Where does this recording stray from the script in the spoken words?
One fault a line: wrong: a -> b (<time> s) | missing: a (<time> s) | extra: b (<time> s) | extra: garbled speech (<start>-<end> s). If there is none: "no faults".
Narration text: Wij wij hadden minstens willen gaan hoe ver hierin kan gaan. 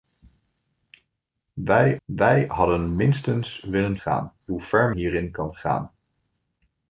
no faults